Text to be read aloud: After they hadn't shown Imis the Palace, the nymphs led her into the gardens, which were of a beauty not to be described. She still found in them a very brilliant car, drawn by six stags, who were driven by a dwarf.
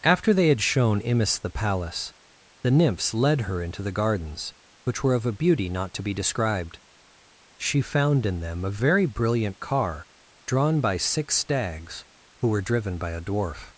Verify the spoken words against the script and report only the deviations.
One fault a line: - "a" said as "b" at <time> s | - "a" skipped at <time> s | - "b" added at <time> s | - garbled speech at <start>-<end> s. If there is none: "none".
- "hadn't" said as "had" at 0.5 s
- "still" skipped at 7.8 s